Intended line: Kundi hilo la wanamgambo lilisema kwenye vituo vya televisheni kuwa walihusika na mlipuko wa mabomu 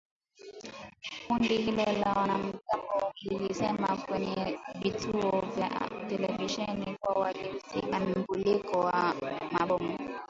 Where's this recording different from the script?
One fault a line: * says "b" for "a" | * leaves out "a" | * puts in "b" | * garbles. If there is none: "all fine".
* leaves out "na"